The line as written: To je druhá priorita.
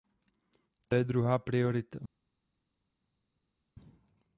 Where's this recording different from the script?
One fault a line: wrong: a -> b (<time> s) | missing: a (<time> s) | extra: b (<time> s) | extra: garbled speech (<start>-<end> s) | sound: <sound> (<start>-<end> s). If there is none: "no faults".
no faults